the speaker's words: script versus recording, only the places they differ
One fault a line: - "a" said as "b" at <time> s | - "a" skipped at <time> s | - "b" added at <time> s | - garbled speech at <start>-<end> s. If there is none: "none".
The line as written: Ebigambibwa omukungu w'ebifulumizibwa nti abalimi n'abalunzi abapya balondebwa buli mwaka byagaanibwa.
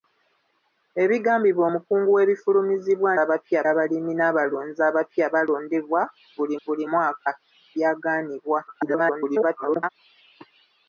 - "nti" said as "abapya" at 3.2 s
- "buli" added at 6.6 s
- garbled speech at 8.7-9.9 s